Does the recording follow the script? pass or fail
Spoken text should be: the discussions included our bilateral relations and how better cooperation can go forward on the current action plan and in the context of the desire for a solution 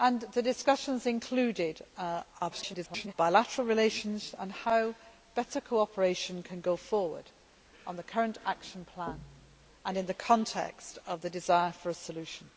fail